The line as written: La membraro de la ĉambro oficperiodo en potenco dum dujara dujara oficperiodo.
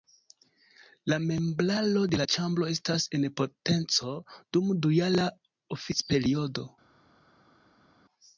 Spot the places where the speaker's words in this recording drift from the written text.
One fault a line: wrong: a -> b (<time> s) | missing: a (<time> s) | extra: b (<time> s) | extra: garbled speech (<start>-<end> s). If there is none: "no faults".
wrong: oficperiodo -> estas (2.7 s)
missing: dujara (5.3 s)